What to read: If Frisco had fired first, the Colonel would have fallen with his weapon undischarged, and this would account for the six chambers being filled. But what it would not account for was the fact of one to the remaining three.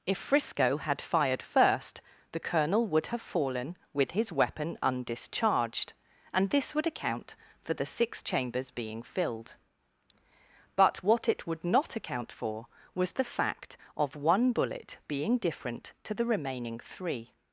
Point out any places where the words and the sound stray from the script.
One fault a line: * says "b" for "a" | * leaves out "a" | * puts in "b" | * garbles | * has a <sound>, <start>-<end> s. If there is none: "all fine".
* puts in "bullet being different"